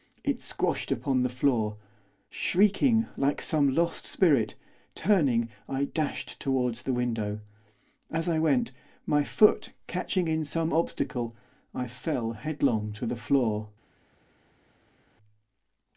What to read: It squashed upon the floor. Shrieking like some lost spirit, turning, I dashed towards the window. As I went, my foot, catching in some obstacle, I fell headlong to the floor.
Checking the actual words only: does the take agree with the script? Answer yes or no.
yes